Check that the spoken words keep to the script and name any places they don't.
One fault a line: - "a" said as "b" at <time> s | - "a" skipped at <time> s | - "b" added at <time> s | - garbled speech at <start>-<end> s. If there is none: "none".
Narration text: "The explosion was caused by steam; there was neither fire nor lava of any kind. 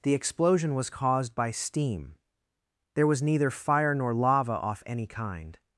- "of" said as "off" at 4.5 s